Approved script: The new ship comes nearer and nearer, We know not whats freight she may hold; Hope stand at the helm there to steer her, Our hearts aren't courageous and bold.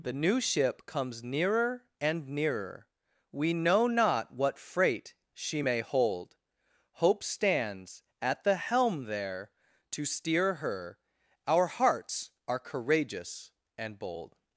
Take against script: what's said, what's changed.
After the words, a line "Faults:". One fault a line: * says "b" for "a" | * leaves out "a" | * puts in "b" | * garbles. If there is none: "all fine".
The new ship comes nearer and nearer, We know not what freight she may hold; Hope stands at the helm there to steer her, Our hearts are courageous and bold.
Faults:
* says "what" for "whats"
* says "stands" for "stand"
* says "are" for "aren't"